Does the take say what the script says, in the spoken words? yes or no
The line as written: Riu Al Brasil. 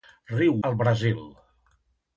yes